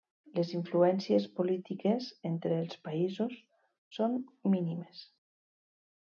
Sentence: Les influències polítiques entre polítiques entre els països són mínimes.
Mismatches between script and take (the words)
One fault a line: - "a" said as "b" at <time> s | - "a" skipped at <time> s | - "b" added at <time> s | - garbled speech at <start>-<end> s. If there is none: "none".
- "polítiques entre" skipped at 2.6 s